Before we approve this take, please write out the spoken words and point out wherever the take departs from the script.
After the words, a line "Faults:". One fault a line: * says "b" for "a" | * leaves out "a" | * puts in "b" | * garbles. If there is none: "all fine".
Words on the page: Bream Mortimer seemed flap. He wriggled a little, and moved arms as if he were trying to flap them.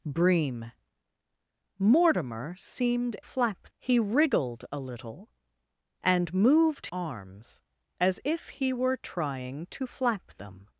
Bream Mortimer seemed flap. He wriggled a little, and moved arms as if he were trying to flap them.
Faults:
all fine